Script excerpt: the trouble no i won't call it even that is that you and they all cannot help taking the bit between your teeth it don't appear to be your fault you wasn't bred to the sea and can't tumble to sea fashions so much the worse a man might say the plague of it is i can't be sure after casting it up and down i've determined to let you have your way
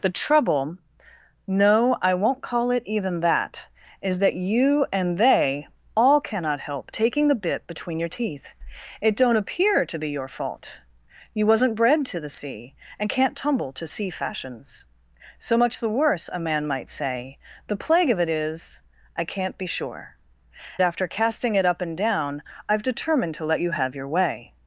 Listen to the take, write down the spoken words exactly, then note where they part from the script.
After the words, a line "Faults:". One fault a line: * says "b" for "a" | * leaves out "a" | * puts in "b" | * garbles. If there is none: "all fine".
the trouble no i won't call it even that is that you and they all cannot help taking the bit between your teeth it don't appear to be your fault you wasn't bred to the sea and can't tumble to sea fashions so much the worse a man might say the plague of it is i can't be sure after casting it up and down i've determined to let you have your way
Faults:
all fine